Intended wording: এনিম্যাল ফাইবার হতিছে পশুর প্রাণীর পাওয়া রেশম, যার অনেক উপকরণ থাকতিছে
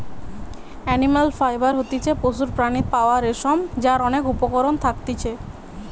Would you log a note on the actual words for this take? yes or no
no